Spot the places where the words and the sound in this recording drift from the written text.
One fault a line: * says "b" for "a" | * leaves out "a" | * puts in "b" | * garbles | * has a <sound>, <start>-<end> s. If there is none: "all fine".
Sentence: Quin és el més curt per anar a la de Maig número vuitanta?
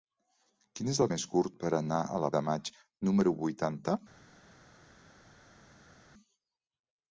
all fine